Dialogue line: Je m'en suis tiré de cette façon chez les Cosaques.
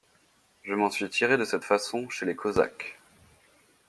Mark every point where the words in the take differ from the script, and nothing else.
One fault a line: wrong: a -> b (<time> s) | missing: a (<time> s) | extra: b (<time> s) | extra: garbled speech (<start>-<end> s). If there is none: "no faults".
no faults